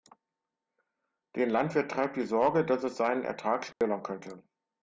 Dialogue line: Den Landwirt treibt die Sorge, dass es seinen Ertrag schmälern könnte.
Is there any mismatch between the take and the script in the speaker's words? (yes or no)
no